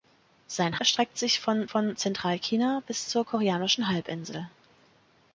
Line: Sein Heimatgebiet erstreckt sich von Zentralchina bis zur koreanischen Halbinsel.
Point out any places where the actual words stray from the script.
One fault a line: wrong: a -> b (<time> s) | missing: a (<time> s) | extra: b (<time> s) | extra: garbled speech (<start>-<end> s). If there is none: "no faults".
missing: Heimatgebiet (0.8 s)
extra: von (1.7 s)